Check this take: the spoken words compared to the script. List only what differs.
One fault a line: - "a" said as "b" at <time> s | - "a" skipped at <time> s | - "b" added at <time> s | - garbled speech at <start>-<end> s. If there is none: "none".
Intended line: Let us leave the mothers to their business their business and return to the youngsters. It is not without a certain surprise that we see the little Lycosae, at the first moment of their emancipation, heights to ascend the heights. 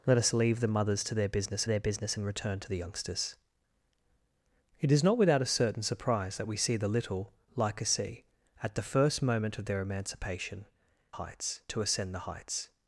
none